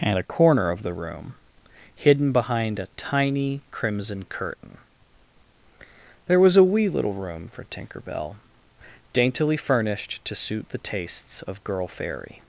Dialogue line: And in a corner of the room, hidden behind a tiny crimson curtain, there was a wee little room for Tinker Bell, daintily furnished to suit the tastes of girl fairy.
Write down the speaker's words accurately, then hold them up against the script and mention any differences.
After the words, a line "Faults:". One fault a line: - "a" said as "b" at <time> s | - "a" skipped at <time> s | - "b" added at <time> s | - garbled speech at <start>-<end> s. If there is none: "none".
And a corner of the room, hidden behind a tiny crimson curtain, there was a wee little room for Tinker Bell, daintily furnished to suit the tastes of girl fairy.
Faults:
- "in" skipped at 0.2 s